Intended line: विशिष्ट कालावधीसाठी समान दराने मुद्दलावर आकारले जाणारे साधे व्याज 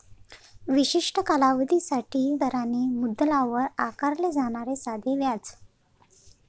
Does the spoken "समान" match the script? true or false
false